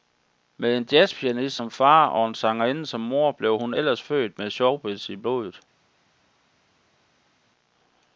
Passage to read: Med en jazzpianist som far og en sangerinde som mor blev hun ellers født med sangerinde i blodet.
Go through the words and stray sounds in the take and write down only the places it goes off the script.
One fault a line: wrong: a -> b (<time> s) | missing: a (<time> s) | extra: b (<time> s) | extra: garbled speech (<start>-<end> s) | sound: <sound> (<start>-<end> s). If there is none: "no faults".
wrong: sangerinde -> showbiz (4.5 s)